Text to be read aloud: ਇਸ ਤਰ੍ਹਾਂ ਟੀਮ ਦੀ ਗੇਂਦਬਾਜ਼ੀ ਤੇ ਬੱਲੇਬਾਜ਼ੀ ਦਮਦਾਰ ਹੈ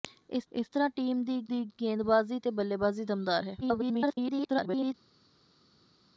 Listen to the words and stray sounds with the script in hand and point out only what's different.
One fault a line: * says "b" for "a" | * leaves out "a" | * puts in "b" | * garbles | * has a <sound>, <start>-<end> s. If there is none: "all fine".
* puts in "ਇਸ"
* puts in "ਦੀ"
* garbles